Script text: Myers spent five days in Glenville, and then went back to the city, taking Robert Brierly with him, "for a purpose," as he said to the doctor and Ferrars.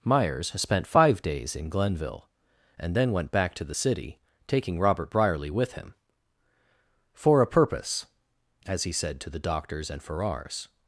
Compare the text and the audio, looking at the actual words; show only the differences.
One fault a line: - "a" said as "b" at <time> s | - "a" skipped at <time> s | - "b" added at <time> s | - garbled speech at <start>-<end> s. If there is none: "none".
- "doctor" said as "doctors" at 9.4 s